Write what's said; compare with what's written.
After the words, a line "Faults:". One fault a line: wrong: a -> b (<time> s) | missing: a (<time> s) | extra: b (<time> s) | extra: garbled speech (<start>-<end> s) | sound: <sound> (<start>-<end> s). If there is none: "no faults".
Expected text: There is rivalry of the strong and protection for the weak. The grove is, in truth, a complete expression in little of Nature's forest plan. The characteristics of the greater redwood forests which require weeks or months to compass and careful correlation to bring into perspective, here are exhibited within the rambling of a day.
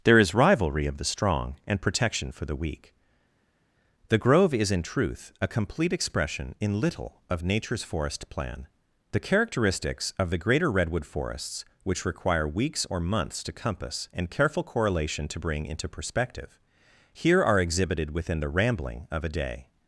There is rivalry of the strong and protection for the weak. The grove is, in truth, a complete expression in little of Nature's forest plan. The characteristics of the greater redwood forests which require weeks or months to compass and careful correlation to bring into perspective, here are exhibited within the rambling of a day.
Faults:
no faults